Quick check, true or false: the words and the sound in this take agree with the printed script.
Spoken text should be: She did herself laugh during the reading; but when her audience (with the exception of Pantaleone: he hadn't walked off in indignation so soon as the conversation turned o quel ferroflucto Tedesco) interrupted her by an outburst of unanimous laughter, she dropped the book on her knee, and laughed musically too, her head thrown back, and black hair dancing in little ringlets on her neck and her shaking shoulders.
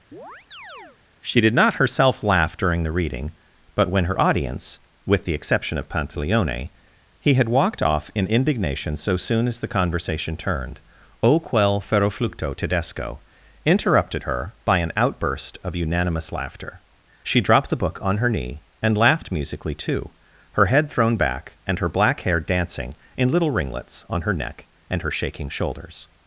false